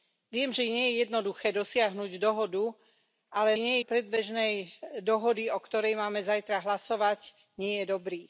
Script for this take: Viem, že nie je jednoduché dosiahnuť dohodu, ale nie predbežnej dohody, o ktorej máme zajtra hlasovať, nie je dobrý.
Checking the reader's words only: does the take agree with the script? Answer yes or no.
yes